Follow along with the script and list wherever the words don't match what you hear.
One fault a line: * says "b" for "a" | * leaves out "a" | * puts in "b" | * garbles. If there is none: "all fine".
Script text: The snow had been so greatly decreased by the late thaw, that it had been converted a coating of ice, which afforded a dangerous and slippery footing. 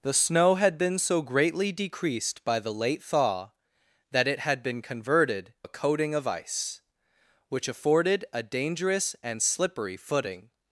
all fine